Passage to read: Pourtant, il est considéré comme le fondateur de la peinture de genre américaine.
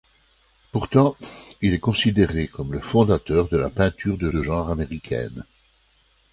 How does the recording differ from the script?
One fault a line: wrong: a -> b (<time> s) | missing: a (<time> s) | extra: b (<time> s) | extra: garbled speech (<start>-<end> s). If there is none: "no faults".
extra: de (4.3 s)